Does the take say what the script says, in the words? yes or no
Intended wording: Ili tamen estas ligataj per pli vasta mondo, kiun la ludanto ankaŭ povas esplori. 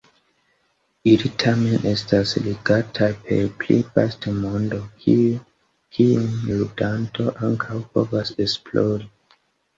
no